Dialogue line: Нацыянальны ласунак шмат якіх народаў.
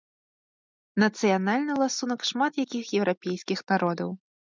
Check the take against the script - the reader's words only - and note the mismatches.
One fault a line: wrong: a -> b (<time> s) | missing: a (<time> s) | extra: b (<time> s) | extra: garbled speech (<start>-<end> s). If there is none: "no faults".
extra: еўрапейскіх (3.0 s)